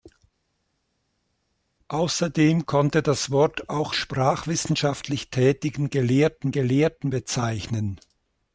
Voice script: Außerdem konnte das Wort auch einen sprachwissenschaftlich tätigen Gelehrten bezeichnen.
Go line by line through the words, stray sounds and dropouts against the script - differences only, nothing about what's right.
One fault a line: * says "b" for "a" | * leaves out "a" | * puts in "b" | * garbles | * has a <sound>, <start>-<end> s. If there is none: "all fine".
* leaves out "einen"
* puts in "Gelehrten"